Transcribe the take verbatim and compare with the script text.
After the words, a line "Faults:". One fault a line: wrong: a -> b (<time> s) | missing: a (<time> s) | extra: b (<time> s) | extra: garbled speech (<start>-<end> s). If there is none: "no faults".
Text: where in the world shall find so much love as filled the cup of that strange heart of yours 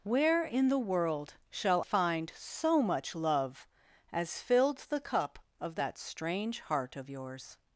where in the world shall find so much love as filled the cup of that strange heart of yours
Faults:
no faults